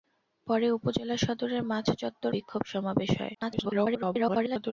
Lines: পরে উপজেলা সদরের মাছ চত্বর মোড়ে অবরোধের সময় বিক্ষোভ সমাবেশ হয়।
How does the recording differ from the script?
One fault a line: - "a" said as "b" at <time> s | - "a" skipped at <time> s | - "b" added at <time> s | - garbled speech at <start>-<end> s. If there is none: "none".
- "মোড়ে অবরোধের সময়" skipped at 2.3 s
- garbled speech at 3.4-4.7 s